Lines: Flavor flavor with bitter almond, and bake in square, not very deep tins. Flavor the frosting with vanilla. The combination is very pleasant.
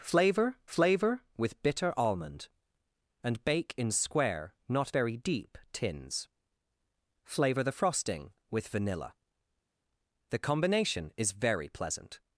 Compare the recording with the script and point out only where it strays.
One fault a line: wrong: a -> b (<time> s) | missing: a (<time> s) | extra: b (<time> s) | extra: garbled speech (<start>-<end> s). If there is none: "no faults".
no faults